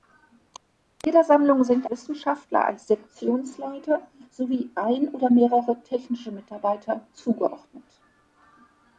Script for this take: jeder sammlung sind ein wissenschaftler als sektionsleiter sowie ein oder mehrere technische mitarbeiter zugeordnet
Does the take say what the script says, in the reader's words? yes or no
no